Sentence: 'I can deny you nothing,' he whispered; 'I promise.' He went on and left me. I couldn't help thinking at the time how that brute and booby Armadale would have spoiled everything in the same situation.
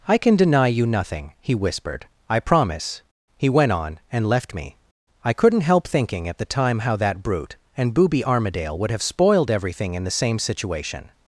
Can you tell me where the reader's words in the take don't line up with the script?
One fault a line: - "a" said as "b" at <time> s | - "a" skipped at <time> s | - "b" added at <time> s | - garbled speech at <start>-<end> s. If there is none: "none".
none